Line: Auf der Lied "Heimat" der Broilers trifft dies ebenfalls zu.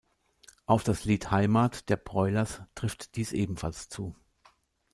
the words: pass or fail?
fail